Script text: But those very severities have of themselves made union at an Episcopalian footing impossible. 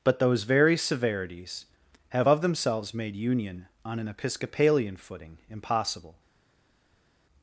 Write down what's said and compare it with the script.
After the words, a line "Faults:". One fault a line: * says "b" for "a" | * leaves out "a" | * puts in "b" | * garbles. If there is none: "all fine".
But those very severities have of themselves made union on an Episcopalian footing impossible.
Faults:
* says "on" for "at"